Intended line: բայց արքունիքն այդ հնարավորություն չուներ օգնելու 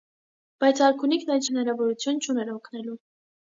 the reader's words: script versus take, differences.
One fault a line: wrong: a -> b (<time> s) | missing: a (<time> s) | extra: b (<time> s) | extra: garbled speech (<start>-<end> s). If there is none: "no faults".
no faults